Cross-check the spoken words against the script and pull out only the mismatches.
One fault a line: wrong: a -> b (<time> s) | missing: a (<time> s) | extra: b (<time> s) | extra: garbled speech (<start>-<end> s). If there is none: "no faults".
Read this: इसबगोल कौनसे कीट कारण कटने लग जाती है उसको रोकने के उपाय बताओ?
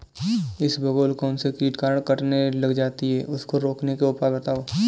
no faults